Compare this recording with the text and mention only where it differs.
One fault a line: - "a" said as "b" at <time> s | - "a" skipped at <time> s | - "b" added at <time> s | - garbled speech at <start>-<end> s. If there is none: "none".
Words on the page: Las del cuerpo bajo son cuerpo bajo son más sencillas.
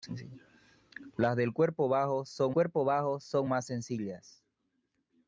none